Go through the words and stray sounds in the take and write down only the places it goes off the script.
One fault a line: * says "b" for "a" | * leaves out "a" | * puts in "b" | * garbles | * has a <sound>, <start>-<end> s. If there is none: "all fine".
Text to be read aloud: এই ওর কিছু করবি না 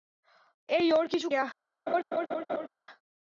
* leaves out "করবি"
* has a laugh, 1.9-2.7 s